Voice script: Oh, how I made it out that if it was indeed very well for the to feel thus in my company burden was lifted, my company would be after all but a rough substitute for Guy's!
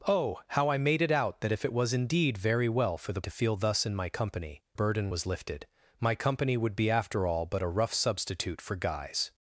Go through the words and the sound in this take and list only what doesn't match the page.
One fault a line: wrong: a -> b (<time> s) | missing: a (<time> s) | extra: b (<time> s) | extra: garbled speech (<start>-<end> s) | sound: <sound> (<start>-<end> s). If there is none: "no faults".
no faults